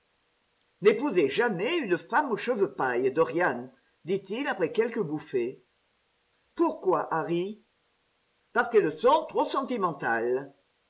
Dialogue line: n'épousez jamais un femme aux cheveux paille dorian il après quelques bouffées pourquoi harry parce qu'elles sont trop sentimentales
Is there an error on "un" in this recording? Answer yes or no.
yes